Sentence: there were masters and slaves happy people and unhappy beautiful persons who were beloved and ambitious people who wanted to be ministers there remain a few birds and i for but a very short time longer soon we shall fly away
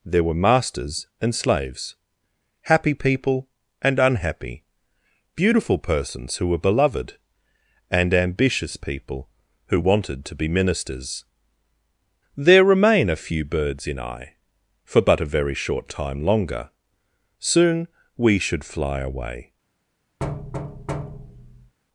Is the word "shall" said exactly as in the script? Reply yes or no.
no